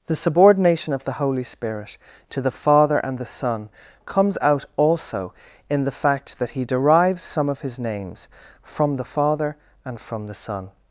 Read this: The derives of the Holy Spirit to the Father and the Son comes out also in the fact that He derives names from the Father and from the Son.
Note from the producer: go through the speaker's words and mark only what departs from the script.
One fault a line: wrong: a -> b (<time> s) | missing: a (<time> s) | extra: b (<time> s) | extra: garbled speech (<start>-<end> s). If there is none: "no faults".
wrong: derives -> subordination (0.1 s)
extra: some of His (7.2 s)